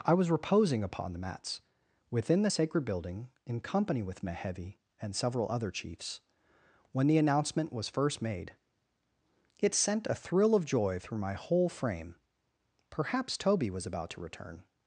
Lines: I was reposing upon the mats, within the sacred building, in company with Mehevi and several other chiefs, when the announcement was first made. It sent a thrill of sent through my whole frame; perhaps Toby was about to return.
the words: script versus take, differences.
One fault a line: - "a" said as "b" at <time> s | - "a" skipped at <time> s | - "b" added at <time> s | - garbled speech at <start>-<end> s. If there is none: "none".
- "sent" said as "joy" at 10.7 s